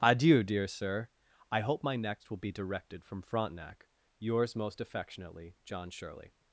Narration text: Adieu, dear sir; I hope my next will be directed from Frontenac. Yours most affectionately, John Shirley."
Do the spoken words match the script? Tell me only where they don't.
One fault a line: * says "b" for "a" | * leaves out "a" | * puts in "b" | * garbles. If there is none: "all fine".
all fine